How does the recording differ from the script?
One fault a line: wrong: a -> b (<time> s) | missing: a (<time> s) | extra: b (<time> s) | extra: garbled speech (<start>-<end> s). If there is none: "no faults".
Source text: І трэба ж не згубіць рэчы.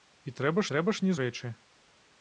extra: трэба (0.7 s)
missing: згубіць (1.2 s)